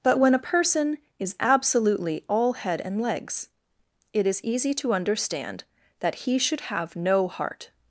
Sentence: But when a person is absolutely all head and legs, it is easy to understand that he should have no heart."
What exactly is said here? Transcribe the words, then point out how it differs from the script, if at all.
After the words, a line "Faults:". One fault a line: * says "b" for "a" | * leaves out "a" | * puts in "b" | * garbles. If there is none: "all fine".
But when a person is absolutely all head and legs, it is easy to understand that he should have no heart."
Faults:
all fine